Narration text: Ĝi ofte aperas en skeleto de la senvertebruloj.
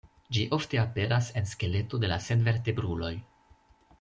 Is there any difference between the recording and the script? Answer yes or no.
no